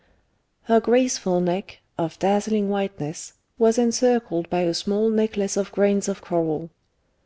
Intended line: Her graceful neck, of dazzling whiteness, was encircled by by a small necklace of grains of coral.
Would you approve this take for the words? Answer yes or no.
no